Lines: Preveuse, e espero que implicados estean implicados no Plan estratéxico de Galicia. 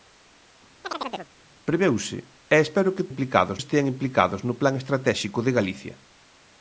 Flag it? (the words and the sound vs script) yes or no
yes